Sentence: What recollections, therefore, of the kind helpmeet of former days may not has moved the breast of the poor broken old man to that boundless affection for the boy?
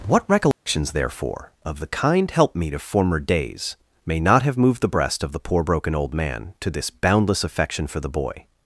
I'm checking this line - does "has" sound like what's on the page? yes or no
no